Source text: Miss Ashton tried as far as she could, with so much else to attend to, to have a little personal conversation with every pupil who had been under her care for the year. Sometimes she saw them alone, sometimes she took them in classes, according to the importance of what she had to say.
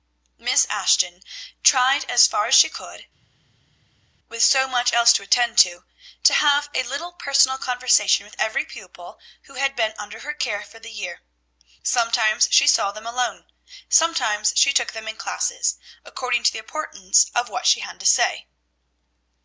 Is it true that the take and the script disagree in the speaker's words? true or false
false